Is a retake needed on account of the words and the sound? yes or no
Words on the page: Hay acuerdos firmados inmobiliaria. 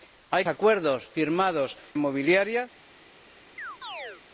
yes